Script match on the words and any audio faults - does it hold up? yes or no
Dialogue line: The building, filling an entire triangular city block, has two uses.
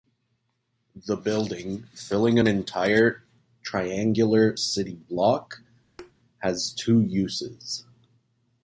no